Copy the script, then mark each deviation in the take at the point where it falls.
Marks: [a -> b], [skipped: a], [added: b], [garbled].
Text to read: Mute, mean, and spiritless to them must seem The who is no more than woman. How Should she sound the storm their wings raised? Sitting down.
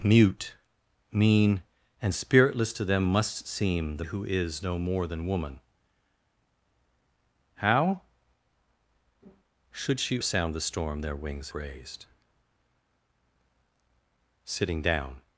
Mute, mean, and spiritless to them must seem The who is no more than woman. How Should she sound the storm their wings raised? Sitting down.